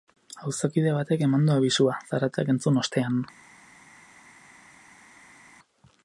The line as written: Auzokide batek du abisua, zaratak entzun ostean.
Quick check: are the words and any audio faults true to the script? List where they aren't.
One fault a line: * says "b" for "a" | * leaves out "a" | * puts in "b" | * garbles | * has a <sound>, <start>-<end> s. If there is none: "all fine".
* puts in "eman"